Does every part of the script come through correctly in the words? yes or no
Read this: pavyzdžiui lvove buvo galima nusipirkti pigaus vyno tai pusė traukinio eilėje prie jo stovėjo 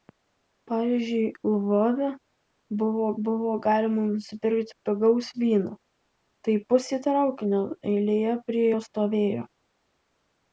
no